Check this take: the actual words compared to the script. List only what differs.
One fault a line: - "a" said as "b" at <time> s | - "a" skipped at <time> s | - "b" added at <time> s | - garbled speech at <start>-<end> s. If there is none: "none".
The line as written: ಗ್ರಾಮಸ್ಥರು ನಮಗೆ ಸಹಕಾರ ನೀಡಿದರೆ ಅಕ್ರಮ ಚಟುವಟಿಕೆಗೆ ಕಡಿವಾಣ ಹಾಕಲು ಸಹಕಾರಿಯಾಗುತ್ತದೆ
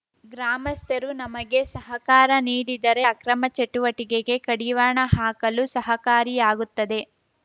none